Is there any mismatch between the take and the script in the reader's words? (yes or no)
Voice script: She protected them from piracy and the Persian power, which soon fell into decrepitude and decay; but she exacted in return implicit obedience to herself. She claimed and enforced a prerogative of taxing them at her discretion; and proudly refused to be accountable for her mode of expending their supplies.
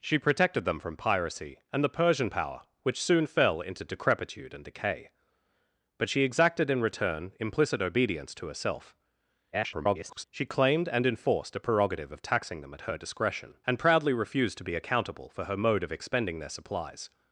yes